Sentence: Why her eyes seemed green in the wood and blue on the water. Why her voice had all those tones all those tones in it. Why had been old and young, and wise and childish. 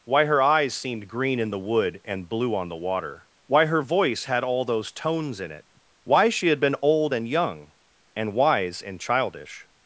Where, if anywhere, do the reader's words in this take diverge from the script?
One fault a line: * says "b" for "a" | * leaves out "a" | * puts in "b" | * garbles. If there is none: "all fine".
* leaves out "all those tones"
* puts in "she"